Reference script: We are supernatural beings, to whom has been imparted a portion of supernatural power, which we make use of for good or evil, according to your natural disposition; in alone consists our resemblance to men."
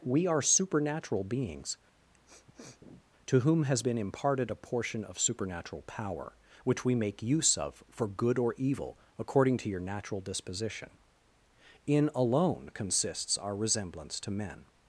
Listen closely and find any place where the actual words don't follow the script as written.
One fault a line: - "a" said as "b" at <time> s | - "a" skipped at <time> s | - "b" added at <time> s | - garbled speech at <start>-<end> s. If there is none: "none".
none